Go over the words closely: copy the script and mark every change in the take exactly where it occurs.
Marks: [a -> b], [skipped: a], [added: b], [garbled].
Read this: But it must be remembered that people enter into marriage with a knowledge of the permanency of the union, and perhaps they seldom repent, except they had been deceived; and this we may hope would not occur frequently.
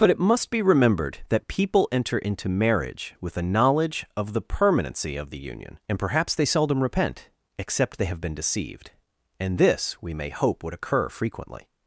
But it must be remembered that people enter into marriage with a knowledge of the permanency of the union, and perhaps they seldom repent, except they [had -> have] been deceived; and this we may hope would [skipped: not] occur frequently.